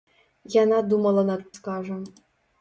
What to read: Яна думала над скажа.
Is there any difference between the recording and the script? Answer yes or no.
no